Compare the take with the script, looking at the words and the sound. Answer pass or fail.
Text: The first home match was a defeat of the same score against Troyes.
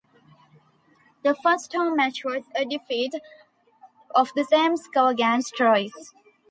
pass